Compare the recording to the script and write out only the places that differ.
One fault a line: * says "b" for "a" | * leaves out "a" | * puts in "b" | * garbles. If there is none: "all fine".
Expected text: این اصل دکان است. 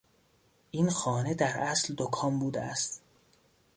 * puts in "خانه در"
* puts in "بوده"